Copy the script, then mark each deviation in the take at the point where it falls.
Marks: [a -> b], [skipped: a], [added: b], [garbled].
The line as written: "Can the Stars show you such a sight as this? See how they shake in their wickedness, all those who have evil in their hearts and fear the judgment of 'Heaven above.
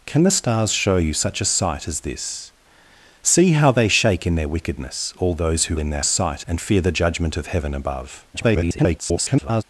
"Can the Stars show you such a sight as this? See how they shake in their wickedness, all those who [skipped: have evil] in their [hearts -> sight] and fear the judgment of 'Heaven above. [garbled]